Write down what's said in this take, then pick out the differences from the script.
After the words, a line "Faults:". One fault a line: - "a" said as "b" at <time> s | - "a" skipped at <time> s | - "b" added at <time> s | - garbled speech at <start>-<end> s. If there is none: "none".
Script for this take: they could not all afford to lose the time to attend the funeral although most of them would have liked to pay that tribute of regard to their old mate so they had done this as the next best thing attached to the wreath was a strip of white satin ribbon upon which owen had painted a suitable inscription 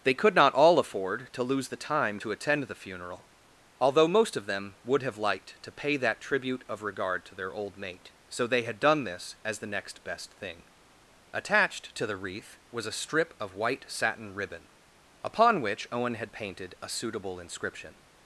they could not all afford to lose the time to attend the funeral although most of them would have liked to pay that tribute of regard to their old mate so they had done this as the next best thing attached to the wreath was a strip of white satin ribbon upon which owen had painted a suitable inscription
Faults:
none